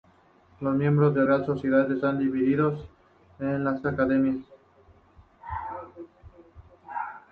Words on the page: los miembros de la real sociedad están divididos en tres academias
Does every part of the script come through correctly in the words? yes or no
no